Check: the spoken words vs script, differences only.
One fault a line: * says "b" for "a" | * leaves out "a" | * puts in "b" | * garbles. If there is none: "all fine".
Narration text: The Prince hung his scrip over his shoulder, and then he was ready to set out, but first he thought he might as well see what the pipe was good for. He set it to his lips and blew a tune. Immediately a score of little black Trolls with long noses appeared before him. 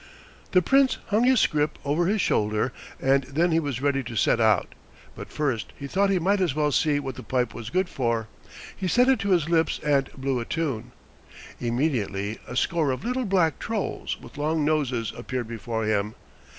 all fine